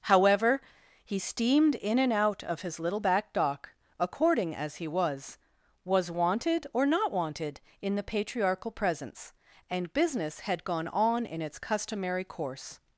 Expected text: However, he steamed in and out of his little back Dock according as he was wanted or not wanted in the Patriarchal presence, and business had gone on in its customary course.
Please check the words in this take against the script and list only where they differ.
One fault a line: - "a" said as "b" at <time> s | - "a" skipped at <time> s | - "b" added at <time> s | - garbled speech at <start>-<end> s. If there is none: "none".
- "was" added at 5.8 s